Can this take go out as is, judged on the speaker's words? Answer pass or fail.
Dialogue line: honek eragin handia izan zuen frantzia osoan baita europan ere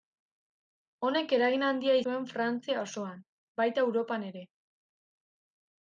fail